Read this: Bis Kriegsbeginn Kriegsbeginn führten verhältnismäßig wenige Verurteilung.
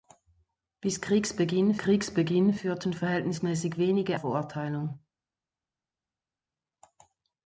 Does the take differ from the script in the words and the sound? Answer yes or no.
no